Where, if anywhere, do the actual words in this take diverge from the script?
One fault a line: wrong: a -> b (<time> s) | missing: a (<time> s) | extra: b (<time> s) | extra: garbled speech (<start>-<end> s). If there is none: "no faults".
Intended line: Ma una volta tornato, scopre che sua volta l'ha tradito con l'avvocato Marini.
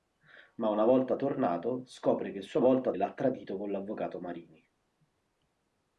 no faults